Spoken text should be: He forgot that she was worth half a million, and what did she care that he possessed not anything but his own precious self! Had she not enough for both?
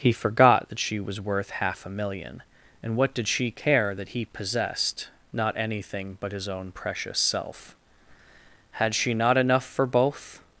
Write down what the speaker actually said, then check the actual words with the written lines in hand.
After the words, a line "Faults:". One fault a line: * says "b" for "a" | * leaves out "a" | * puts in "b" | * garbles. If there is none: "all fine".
He forgot that she was worth half a million, and what did she care that he possessed not anything but his own precious self! Had she not enough for both?
Faults:
all fine